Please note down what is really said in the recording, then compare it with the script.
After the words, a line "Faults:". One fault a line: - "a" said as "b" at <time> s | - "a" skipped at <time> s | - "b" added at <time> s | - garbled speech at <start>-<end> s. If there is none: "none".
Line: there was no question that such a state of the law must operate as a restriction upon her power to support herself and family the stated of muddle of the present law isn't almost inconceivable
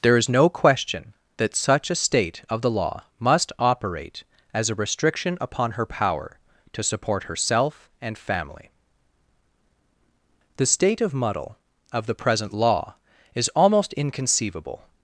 there is no question that such a state of the law must operate as a restriction upon her power to support herself and family the state of muddle of the present law is almost inconceivable
Faults:
- "was" said as "is" at 0.2 s
- "stated" said as "state" at 10.7 s
- "isn't" said as "is" at 13.4 s